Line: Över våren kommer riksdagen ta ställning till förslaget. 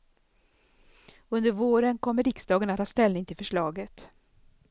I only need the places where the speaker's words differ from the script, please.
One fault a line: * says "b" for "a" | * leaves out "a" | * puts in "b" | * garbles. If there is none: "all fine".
* says "Under" for "Över"
* puts in "att"